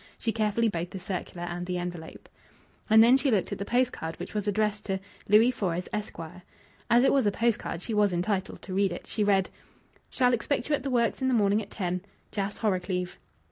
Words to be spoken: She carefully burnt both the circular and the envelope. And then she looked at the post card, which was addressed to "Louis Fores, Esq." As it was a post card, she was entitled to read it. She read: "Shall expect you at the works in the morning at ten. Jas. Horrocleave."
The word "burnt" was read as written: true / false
false